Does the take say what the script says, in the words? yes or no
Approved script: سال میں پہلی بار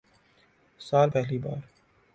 no